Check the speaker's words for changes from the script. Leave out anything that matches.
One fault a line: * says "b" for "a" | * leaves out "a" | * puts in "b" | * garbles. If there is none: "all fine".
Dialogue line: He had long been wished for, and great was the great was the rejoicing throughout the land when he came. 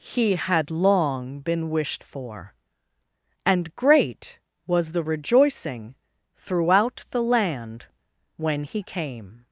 * leaves out "great was the"